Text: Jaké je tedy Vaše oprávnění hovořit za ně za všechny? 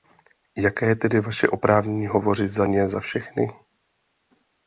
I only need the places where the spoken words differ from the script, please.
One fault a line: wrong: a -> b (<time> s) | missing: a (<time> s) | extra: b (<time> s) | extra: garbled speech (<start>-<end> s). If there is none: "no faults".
no faults